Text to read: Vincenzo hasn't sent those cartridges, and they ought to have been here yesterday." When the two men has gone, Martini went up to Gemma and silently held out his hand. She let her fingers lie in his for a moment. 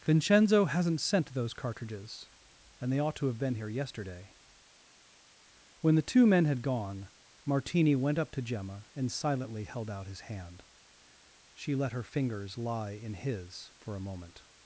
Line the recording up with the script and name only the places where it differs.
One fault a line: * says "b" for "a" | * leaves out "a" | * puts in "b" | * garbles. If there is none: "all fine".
* says "had" for "has"